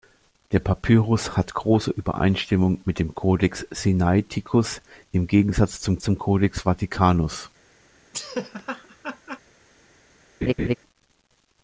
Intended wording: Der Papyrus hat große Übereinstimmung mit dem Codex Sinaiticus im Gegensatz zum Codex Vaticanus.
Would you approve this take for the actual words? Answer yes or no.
no